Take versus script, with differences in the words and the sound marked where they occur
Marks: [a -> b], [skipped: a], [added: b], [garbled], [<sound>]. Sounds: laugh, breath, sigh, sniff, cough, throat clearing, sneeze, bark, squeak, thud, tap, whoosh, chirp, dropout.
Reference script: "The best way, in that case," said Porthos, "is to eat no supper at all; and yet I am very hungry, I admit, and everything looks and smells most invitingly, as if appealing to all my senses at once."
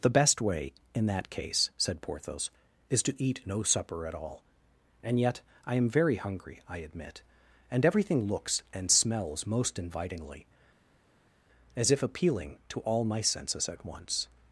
"The best way, in that case," said Porthos, "is to eat no supper at all; and yet I am very hungry, I admit, and everything looks and smells most invitingly, as if appealing to all my senses at once."